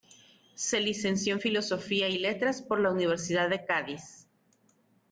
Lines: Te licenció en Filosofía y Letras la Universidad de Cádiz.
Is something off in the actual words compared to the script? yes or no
yes